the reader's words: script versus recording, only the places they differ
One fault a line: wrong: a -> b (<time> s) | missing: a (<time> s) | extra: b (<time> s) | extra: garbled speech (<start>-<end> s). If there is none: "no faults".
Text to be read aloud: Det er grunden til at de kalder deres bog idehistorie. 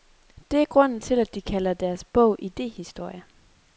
no faults